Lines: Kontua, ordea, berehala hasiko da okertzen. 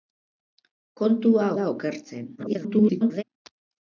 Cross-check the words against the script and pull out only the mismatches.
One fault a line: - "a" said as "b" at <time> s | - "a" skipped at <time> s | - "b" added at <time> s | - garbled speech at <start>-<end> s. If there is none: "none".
- "ordea berehala hasiko" skipped at 1.5 s
- garbled speech at 2.4-3.2 s